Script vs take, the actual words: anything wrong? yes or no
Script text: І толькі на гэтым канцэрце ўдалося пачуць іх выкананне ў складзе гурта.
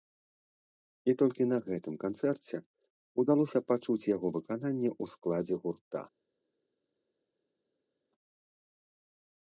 yes